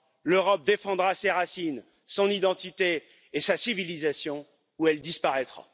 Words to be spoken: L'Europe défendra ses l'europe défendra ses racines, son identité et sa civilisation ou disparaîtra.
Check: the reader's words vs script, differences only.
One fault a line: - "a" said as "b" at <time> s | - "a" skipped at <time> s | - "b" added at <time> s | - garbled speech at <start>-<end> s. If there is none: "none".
- "l'europe défendra ses" skipped at 1.3 s
- "elle" added at 4.9 s